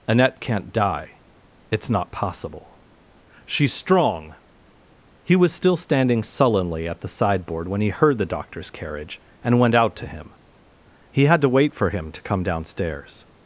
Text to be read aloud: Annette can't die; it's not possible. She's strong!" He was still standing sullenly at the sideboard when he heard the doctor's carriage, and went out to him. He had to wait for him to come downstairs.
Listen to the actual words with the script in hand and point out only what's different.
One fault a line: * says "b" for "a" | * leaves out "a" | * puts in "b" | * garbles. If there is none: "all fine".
all fine